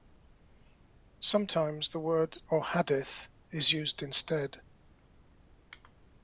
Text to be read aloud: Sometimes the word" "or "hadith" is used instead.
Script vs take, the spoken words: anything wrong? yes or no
no